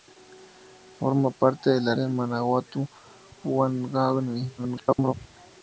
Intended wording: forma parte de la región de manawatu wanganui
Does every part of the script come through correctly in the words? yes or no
no